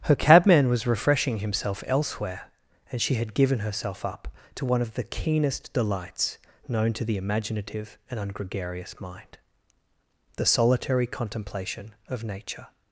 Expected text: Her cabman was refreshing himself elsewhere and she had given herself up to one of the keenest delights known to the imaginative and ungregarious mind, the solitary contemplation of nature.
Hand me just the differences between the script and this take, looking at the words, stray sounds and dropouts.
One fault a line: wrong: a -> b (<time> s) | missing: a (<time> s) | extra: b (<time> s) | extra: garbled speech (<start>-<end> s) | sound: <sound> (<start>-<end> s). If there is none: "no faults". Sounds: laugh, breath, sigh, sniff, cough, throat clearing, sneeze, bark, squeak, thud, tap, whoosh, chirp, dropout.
no faults